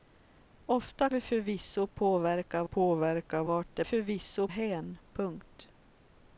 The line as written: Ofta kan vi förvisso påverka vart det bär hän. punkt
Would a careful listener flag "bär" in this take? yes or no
yes